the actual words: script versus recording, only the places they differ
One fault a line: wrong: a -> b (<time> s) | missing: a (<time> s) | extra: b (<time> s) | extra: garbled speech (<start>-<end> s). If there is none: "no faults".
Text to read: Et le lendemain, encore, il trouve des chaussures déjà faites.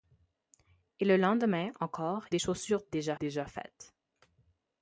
missing: il trouve (2.2 s)
extra: déjà (3.2 s)